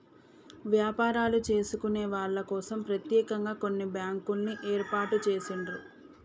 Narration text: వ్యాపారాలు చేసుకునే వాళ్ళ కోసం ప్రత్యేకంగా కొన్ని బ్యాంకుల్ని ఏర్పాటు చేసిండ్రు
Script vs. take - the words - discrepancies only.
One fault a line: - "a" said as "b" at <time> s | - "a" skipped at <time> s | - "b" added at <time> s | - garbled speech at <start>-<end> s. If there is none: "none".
none